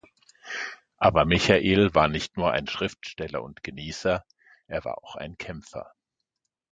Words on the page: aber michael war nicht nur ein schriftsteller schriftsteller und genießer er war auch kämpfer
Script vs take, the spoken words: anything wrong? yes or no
yes